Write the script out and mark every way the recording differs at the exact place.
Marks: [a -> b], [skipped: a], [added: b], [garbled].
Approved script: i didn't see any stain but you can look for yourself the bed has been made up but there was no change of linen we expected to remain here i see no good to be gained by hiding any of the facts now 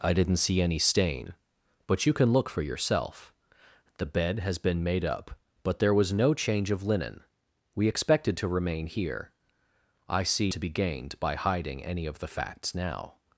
i didn't see any stain but you can look for yourself the bed has been made up but there was no change of linen we expected to remain here i see [skipped: no good] to be gained by hiding any of the facts now